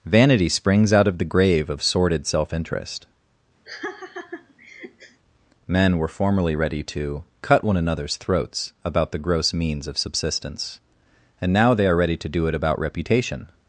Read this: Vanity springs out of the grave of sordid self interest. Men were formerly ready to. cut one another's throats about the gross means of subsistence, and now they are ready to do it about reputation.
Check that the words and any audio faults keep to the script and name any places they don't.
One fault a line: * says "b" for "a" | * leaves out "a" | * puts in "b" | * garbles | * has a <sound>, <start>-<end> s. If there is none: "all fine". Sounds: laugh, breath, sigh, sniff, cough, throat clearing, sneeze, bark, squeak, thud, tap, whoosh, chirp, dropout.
* has a laugh, 3.7-5.2 s